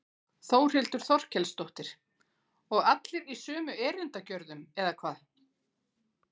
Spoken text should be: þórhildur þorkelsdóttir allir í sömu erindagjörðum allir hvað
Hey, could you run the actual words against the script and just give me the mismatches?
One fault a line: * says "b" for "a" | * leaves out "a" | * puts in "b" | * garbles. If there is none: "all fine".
* puts in "og"
* says "eða" for "allir"